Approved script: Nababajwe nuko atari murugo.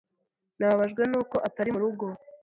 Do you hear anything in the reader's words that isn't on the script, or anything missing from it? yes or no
no